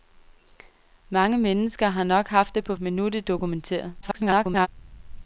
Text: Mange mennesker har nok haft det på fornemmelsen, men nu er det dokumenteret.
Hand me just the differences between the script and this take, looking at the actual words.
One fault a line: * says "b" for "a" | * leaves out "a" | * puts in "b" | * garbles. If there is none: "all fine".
* leaves out "fornemmelsen"
* garbles